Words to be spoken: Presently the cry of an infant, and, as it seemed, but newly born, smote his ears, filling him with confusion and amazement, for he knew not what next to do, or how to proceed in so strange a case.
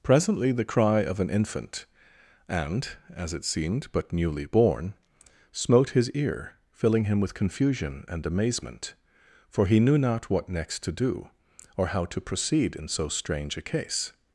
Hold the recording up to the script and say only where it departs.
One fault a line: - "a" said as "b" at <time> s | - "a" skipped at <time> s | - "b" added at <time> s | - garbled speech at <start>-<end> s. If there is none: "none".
- "ears" said as "ear" at 6.1 s